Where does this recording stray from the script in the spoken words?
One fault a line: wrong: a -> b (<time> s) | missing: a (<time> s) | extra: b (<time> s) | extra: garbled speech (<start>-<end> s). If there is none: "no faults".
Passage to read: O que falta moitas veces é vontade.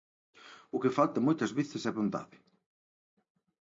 no faults